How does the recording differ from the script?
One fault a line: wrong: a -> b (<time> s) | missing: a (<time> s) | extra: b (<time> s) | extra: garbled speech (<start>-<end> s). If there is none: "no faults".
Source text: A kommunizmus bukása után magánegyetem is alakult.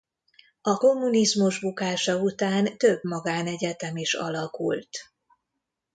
extra: több (2.8 s)